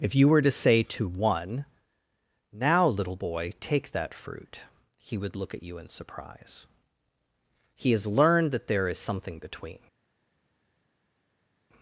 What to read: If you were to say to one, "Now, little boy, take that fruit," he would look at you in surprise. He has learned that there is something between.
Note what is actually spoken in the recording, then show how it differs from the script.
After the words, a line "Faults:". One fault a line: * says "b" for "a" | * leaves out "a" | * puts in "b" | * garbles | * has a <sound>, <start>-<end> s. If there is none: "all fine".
If you were to say to one, "Now, little boy, take that fruit," he would look at you in surprise. He has learned that there is something between.
Faults:
all fine